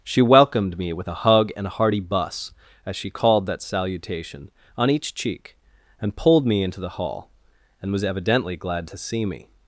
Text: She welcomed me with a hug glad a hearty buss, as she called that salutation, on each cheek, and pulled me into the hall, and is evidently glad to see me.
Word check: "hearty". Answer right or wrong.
right